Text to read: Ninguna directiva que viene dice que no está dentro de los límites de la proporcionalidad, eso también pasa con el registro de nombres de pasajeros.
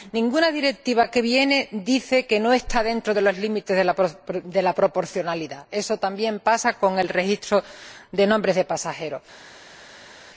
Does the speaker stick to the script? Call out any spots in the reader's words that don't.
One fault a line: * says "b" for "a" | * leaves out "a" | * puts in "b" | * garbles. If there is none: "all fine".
all fine